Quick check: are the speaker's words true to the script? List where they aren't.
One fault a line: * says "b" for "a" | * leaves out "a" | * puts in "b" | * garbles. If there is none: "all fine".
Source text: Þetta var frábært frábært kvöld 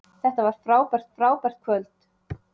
all fine